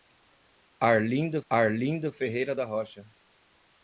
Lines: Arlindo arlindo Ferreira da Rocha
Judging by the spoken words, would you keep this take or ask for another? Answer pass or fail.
pass